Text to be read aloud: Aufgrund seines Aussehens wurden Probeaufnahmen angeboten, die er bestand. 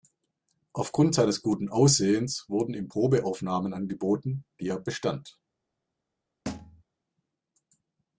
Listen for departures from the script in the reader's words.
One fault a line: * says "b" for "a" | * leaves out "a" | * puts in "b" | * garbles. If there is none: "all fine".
* puts in "guten"
* puts in "ihm"